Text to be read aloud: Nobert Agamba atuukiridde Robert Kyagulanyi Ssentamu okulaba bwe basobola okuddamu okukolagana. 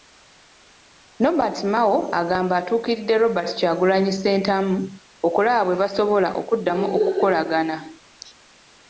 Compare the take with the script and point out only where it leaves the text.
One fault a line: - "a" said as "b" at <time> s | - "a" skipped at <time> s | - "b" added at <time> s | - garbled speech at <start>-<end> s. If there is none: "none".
- "Mao" added at 1.7 s